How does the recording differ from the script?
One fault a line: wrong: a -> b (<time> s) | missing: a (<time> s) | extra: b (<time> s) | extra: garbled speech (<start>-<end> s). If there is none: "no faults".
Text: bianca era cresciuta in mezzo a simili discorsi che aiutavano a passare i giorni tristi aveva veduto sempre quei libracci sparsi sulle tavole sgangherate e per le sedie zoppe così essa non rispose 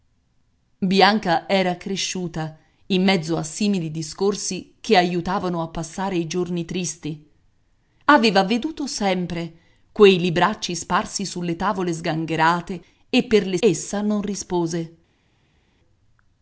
missing: sedie zoppe così (13.6 s)